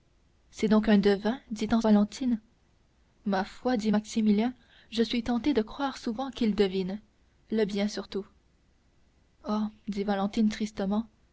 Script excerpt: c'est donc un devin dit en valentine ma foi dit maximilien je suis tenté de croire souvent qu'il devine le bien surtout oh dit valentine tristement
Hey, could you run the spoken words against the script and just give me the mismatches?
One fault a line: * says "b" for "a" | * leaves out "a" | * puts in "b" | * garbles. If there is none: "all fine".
all fine